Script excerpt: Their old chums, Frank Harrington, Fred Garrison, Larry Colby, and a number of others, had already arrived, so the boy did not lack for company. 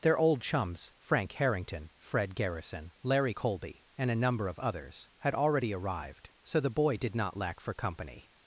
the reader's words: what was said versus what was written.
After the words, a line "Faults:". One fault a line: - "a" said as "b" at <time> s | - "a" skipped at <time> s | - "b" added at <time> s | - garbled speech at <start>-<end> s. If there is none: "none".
Their old chums, Frank Harrington, Fred Garrison, Larry Colby, and a number of others, had already arrived, so the boy did not lack for company.
Faults:
none